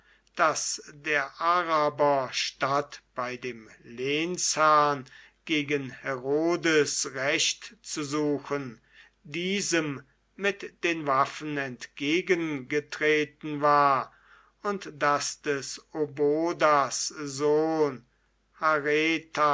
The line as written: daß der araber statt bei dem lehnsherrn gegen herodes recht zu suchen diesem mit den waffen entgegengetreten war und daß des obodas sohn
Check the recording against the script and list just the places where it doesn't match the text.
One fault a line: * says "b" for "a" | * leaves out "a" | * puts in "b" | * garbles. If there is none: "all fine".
all fine